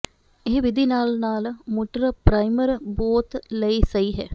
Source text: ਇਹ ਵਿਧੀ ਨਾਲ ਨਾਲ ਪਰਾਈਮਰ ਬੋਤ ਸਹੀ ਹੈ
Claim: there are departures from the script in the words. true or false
true